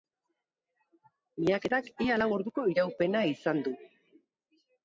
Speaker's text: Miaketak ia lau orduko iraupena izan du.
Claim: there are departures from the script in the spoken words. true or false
false